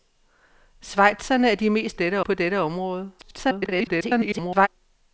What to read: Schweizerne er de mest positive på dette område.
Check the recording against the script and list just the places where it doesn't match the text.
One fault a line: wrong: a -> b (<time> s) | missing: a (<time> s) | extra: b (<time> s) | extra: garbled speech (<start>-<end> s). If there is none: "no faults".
wrong: positive -> dette (1.9 s)
extra: garbled speech (3.2-4.7 s)